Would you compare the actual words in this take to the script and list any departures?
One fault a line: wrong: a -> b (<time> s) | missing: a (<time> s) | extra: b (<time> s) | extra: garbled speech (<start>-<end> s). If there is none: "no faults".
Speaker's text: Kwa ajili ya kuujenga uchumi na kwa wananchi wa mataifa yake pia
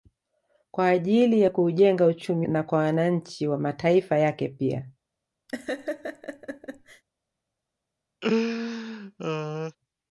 no faults